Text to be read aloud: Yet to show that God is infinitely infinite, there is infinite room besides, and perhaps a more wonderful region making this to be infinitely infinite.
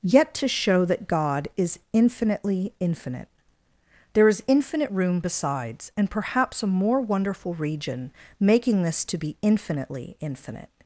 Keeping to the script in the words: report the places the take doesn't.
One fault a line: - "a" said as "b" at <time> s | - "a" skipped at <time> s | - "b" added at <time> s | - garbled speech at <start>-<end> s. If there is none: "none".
none